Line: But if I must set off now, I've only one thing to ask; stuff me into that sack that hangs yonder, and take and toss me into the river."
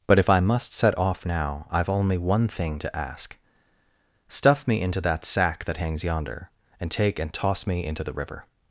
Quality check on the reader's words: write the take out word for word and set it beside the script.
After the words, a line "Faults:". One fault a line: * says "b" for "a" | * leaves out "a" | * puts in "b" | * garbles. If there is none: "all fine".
But if I must set off now, I've only one thing to ask; stuff me into that sack that hangs yonder, and take and toss me into the river."
Faults:
all fine